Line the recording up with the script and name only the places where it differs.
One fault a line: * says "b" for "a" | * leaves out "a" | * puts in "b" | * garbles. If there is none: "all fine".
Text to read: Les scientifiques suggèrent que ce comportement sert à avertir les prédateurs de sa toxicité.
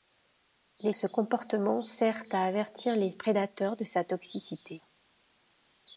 * leaves out "scientifiques suggèrent que"